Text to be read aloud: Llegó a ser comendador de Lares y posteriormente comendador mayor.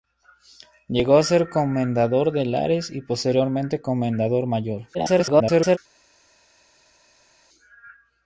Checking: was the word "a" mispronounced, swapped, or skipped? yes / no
no